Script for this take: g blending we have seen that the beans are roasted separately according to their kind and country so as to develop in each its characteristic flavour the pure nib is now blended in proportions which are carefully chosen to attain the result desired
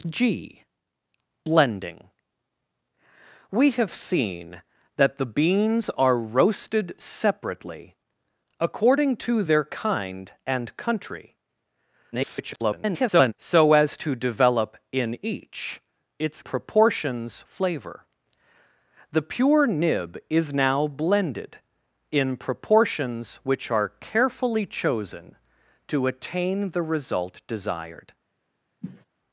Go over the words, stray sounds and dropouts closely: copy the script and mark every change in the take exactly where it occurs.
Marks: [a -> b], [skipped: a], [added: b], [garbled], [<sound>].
g blending we have seen that the beans are roasted separately according to their kind and country [garbled] so as to develop in each its [characteristic -> proportions] flavour the pure nib is now blended in proportions which are carefully chosen to attain the result desired [sniff]